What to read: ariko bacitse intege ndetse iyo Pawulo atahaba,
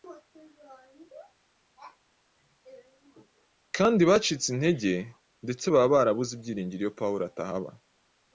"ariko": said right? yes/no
no